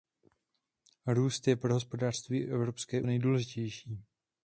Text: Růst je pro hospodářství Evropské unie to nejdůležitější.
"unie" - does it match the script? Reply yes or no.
no